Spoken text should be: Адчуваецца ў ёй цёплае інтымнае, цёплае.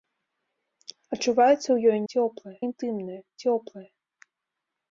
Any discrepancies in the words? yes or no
no